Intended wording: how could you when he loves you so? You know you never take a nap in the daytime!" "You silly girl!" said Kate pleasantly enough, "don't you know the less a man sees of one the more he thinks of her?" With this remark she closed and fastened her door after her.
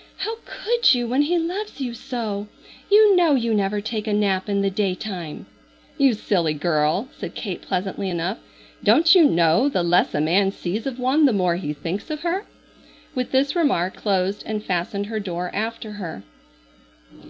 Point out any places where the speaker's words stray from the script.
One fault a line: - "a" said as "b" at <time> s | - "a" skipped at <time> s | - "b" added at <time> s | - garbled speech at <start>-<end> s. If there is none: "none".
- "she" skipped at 14.0 s